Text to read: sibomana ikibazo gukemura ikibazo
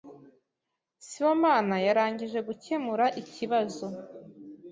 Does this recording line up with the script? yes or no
no